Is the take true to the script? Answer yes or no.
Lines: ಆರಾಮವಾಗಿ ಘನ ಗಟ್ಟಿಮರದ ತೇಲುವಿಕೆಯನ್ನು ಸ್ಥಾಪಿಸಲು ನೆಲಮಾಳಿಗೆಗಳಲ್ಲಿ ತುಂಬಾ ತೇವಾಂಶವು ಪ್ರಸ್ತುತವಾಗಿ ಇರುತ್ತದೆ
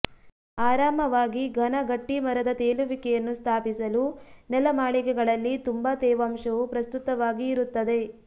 yes